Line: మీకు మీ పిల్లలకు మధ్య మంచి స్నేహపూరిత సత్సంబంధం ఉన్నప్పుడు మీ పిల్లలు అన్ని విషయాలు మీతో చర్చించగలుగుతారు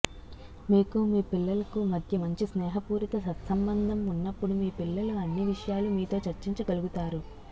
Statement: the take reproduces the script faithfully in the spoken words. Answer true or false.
true